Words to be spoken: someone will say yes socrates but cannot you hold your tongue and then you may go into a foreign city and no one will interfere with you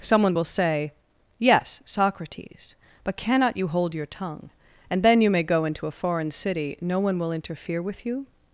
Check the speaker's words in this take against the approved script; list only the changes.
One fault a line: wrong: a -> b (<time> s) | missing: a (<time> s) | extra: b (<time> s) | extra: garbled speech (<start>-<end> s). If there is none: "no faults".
missing: and (6.8 s)